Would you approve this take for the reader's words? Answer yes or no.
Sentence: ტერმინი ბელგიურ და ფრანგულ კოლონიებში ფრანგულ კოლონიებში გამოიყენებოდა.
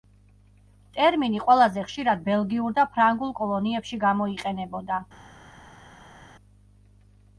no